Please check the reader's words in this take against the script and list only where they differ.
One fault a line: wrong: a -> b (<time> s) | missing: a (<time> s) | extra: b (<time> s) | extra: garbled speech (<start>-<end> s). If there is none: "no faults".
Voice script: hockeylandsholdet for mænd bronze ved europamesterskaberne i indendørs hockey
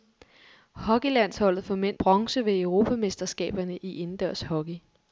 no faults